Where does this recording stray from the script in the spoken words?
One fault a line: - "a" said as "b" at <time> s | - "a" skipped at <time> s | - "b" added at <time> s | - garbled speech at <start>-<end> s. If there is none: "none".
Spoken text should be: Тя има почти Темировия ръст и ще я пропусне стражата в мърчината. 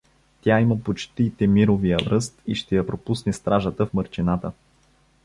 none